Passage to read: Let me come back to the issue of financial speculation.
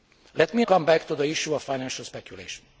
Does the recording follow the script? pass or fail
pass